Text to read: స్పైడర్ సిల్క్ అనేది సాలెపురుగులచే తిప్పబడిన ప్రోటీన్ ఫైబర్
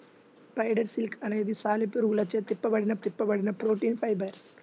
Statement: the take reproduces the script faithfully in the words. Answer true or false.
false